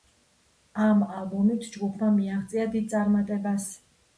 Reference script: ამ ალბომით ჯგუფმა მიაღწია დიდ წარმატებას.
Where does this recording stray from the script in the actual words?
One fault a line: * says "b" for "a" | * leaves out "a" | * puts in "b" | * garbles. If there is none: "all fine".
all fine